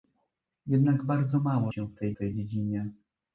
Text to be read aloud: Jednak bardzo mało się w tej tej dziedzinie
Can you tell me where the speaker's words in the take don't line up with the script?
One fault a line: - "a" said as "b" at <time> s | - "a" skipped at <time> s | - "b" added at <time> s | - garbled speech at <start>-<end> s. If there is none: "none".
none